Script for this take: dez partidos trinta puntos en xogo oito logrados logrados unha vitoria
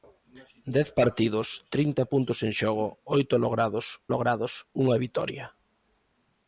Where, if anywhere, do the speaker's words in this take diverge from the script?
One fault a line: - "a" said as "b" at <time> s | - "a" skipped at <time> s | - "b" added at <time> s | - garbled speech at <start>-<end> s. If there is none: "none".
none